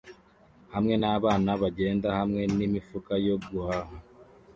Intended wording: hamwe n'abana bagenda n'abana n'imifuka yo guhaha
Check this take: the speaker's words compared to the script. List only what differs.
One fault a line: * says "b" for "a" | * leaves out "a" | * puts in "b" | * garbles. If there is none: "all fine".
* says "hamwe" for "n'abana"